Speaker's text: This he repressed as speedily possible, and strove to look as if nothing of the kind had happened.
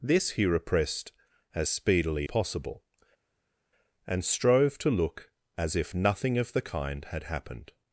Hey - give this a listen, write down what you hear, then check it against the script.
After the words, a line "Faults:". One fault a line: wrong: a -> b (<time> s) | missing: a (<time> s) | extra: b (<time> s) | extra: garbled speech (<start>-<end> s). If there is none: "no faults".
This he repressed as speedily possible, and strove to look as if nothing of the kind had happened.
Faults:
no faults